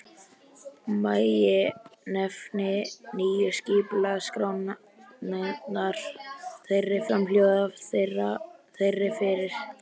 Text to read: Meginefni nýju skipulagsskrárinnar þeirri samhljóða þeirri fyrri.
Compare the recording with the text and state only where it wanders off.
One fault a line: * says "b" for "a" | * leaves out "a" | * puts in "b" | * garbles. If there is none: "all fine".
all fine